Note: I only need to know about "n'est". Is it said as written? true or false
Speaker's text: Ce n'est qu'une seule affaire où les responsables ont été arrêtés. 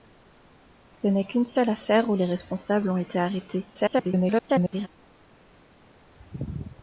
true